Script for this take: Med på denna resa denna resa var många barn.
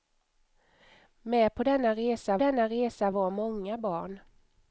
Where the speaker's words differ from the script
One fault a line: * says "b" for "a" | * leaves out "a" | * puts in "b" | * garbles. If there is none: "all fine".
all fine